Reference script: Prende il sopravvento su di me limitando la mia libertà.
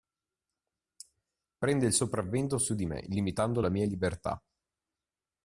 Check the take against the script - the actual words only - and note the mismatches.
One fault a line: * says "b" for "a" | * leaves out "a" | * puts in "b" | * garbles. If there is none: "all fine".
all fine